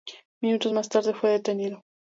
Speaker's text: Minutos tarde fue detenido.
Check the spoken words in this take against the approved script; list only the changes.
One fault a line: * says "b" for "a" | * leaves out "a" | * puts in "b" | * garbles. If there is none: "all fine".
* puts in "más"